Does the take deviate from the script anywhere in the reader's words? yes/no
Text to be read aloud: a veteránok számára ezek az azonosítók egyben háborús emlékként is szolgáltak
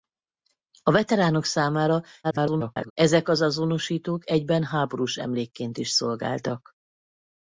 yes